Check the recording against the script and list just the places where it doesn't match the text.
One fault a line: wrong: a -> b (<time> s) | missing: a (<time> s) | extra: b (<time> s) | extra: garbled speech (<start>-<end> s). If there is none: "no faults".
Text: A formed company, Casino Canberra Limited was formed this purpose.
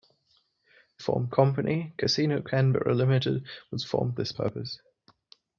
no faults